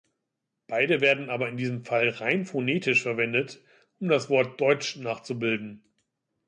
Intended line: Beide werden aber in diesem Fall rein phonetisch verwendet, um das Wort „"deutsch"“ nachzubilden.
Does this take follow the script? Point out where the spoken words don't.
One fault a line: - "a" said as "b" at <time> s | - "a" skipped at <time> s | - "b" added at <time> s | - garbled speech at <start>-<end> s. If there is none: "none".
none